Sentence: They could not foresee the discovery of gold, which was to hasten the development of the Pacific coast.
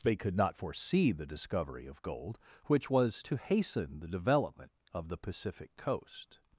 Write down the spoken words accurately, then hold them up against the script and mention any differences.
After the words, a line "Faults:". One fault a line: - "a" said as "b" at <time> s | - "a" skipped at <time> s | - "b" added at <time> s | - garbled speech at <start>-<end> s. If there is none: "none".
They could not foresee the discovery of gold, which was to hasten the development of the Pacific coast.
Faults:
none